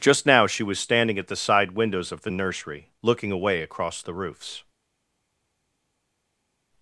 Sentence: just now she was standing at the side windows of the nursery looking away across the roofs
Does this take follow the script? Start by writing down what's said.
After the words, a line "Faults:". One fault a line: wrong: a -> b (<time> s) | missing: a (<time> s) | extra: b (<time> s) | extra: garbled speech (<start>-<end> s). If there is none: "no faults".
just now she was standing at the side windows of the nursery looking away across the roofs
Faults:
no faults